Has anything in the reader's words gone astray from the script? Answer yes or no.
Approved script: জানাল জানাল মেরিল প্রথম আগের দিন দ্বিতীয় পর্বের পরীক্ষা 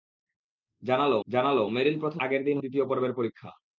no